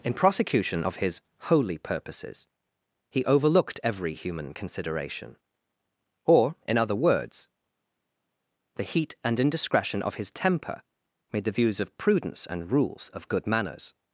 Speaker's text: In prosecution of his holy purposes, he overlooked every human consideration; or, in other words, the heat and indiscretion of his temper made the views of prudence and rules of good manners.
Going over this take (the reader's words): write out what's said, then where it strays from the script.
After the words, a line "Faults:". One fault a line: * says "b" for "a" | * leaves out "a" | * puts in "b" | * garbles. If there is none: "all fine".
In prosecution of his holy purposes, he overlooked every human consideration; or, in other words, the heat and indiscretion of his temper made the views of prudence and rules of good manners.
Faults:
all fine